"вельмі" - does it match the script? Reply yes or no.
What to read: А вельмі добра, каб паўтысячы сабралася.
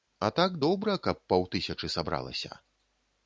no